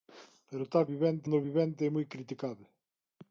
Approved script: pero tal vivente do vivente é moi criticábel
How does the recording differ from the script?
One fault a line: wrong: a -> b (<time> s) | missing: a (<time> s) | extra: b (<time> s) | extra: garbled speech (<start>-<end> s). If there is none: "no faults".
no faults